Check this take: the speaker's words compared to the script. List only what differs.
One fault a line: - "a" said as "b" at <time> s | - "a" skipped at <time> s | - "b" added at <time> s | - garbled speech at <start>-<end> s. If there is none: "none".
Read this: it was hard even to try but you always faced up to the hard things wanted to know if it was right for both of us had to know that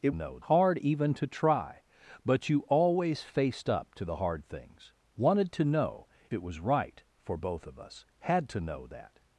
- "was" said as "know" at 0.1 s
- "if" skipped at 6.1 s